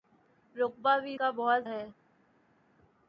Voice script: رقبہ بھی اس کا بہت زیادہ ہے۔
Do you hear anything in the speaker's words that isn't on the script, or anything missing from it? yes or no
yes